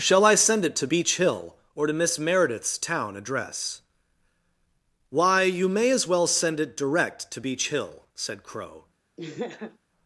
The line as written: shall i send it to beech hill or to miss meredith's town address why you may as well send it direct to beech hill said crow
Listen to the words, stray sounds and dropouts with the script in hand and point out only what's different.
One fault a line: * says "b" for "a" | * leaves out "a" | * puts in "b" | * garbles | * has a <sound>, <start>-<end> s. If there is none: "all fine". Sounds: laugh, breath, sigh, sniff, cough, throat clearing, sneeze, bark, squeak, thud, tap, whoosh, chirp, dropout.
* has a laugh, 9.2-9.8 s